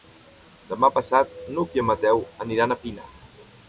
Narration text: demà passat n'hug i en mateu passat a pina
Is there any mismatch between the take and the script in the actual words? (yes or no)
yes